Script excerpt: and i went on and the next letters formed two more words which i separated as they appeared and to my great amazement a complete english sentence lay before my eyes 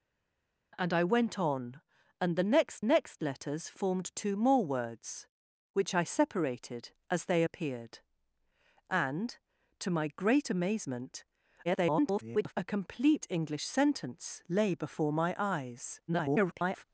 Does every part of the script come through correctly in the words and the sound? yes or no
no